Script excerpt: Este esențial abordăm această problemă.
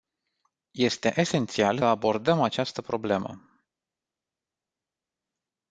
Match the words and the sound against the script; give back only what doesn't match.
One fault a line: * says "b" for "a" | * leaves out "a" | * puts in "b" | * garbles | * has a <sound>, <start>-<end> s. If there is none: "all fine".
all fine